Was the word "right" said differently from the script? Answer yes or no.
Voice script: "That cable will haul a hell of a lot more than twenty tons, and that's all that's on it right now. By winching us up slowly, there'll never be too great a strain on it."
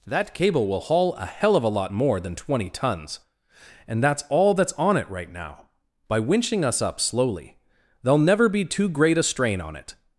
no